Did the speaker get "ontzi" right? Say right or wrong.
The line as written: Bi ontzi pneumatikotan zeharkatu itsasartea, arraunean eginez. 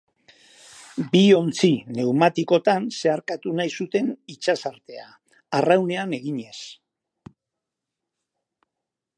right